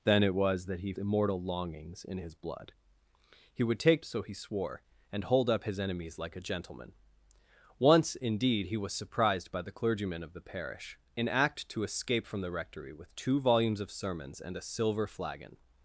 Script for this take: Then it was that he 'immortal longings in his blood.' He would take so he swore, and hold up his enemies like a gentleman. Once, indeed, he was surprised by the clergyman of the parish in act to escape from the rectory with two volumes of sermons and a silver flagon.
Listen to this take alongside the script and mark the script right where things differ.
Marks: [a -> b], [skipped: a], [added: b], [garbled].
Then it was that he 'immortal longings in his blood.' He would take so he swore, and hold up his enemies like a gentleman. Once, indeed, he was surprised by the clergyman of the parish in act to escape from the rectory with two volumes of sermons and a silver flagon.